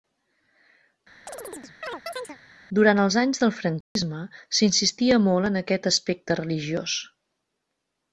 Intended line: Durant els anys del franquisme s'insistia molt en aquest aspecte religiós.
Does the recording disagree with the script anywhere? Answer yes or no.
no